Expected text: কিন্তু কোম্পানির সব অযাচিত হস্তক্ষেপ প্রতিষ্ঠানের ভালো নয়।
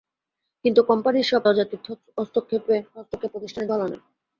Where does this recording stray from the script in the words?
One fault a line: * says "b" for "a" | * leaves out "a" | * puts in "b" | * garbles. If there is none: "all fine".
all fine